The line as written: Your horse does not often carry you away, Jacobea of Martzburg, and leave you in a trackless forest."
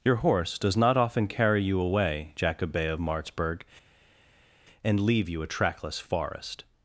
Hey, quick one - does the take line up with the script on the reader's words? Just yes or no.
no